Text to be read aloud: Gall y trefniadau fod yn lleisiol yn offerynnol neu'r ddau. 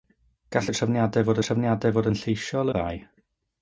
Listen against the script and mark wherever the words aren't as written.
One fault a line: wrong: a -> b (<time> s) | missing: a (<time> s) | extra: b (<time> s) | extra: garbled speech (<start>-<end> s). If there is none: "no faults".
wrong: yn lleisiol -> trefniadau fod (1.4 s)
wrong: offerynnol neu'r -> lleisiol (2.2 s)